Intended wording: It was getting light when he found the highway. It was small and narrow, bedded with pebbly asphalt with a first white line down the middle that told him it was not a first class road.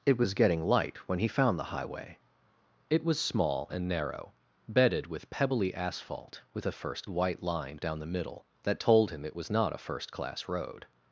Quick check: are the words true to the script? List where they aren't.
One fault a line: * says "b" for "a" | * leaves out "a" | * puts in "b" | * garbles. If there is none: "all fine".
all fine